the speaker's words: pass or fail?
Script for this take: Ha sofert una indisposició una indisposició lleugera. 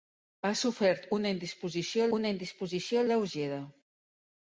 pass